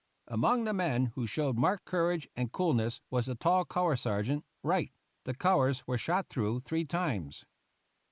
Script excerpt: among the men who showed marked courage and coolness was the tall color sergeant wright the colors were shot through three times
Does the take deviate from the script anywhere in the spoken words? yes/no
no